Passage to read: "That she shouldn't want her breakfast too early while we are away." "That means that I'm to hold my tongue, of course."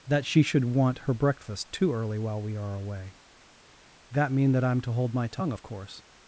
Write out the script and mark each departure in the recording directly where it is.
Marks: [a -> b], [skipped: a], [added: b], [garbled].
"That she [shouldn't -> should] want her breakfast too early while we are away." "That [means -> mean] that I'm to hold my tongue, of course."